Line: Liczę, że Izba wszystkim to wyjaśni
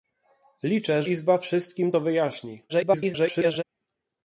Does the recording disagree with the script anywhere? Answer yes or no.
yes